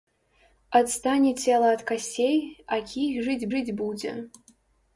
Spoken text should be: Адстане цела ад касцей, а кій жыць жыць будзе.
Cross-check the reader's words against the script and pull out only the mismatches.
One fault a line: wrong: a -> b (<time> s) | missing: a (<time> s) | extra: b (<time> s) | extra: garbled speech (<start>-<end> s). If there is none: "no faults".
no faults